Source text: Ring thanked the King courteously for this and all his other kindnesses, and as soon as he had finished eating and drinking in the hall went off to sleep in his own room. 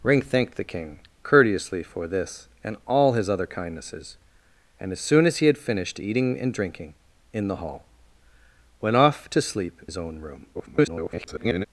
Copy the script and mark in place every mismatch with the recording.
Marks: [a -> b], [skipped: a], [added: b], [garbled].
Ring thanked the King courteously for this and all his other kindnesses, and as soon as he had finished eating and drinking in the hall went off to sleep [skipped: in] his own room. [garbled]